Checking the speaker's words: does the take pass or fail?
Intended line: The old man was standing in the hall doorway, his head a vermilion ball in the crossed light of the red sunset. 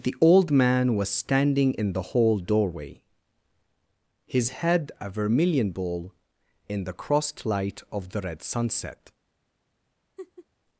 pass